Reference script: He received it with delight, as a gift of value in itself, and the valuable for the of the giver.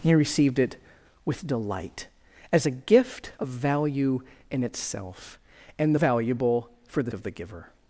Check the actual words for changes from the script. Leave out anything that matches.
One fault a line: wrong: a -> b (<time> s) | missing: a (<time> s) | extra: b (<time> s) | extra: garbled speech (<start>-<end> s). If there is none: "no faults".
no faults